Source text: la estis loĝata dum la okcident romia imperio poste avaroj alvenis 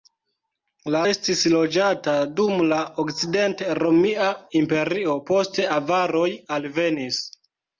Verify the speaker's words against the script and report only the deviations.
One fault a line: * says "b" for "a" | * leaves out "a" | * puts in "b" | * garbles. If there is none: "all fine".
all fine